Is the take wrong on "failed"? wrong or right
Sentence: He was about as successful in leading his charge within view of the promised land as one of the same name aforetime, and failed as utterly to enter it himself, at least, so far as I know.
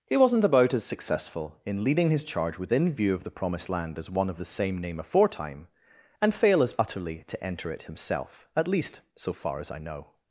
wrong